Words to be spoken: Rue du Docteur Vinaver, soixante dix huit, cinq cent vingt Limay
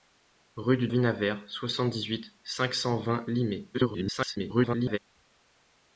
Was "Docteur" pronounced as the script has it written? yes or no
no